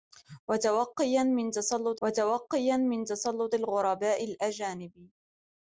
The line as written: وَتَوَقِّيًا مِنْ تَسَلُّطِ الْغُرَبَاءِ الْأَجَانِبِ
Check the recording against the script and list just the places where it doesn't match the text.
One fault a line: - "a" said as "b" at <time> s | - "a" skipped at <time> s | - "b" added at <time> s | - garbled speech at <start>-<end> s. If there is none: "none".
- "وَتَوَقِّيًا مِنْ تَسَلُّطِ" added at 2.0 s